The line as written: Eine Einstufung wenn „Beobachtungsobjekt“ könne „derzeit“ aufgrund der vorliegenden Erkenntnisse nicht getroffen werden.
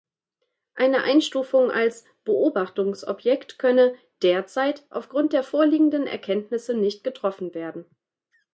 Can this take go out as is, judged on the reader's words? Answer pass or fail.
fail